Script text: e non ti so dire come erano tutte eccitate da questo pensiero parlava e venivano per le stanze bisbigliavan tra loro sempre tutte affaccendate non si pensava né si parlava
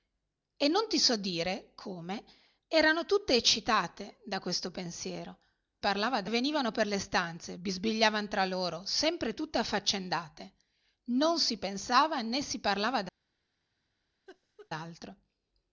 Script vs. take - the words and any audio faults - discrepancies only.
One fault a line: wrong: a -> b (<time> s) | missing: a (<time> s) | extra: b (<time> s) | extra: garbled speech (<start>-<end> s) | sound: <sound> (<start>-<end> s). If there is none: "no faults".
sound: laugh (14.3-14.7 s)